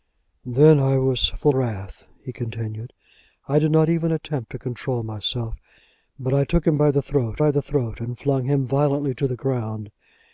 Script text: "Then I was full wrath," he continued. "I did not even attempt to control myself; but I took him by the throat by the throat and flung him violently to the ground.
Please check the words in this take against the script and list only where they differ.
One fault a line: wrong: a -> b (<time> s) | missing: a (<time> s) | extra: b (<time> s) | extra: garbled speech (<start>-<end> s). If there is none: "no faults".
no faults